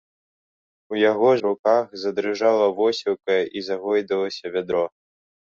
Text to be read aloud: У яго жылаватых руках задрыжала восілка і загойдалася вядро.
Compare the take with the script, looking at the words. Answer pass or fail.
fail